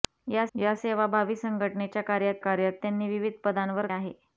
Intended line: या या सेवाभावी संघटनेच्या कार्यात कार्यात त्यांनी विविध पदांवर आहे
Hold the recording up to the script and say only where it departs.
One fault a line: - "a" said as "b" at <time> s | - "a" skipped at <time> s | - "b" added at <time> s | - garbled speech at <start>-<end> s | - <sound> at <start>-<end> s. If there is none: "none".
none